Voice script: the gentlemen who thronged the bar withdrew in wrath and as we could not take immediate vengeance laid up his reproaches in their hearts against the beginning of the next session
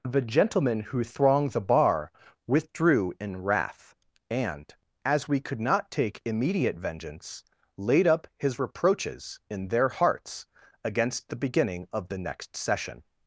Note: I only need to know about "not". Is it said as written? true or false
true